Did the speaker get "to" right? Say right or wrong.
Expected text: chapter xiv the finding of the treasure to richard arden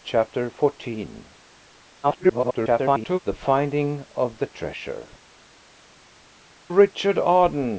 wrong